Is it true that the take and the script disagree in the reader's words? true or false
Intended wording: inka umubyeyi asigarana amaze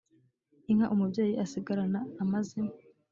false